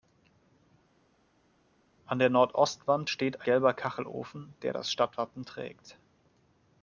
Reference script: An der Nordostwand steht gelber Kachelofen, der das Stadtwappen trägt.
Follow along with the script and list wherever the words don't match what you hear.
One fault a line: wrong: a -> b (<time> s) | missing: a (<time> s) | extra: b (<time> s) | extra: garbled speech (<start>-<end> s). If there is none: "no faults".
no faults